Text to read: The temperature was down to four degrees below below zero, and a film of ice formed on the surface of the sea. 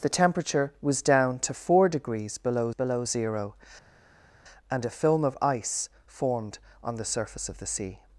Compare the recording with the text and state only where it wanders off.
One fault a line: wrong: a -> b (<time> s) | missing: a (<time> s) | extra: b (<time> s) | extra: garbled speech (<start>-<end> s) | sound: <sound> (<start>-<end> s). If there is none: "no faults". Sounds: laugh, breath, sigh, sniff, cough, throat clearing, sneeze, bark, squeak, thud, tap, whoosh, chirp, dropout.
no faults